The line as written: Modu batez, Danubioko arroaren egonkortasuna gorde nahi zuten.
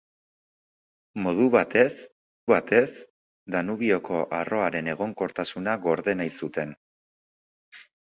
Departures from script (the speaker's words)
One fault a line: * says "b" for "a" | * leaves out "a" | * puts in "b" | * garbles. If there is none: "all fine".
* puts in "batez"